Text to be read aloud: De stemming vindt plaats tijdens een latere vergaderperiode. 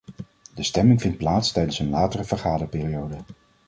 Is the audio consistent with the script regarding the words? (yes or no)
yes